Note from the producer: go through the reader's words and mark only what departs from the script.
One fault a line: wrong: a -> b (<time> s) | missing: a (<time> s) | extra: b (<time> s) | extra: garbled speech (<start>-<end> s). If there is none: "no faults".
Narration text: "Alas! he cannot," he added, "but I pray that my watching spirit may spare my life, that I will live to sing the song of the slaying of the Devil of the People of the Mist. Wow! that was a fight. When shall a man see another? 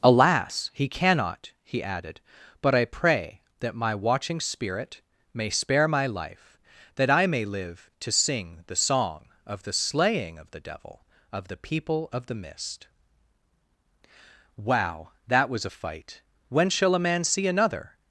wrong: will -> may (7.3 s)